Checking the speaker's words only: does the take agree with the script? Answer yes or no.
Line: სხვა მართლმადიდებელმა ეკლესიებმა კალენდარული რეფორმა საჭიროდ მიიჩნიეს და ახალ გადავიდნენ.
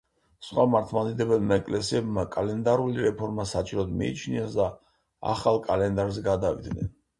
no